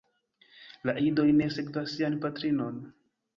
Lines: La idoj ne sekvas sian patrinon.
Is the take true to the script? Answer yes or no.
yes